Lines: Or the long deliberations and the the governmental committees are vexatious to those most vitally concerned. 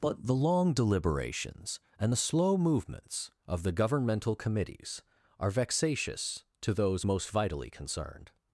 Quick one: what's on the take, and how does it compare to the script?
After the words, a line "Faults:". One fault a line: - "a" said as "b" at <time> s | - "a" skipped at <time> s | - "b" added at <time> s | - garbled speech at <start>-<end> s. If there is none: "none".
But the long deliberations and the slow movements of the governmental committees are vexatious to those most vitally concerned.
Faults:
- "Or" said as "But" at 0.0 s
- "slow movements of" added at 2.2 s